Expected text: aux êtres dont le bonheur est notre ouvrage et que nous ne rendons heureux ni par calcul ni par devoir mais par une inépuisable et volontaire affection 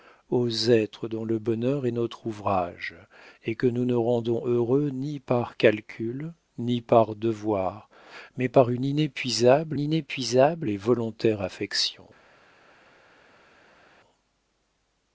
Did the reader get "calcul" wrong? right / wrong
right